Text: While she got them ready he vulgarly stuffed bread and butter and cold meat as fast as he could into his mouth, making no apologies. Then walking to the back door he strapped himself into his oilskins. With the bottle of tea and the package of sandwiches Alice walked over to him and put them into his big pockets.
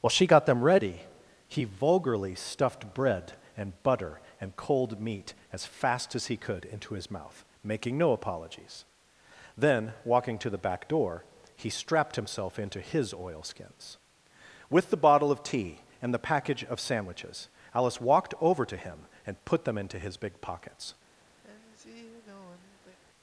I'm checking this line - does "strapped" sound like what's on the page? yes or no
yes